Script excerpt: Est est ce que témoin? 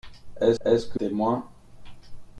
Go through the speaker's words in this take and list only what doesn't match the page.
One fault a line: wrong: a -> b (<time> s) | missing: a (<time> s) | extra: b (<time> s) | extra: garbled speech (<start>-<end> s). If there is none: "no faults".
no faults